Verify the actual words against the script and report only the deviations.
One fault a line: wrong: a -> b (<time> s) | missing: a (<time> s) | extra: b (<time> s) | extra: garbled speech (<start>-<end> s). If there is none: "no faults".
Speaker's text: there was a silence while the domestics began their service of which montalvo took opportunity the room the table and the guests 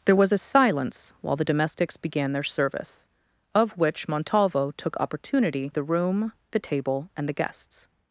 no faults